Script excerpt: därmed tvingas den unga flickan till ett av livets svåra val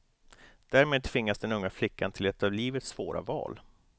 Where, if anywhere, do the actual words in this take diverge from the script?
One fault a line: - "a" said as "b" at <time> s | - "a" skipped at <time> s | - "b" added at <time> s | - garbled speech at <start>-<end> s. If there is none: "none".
none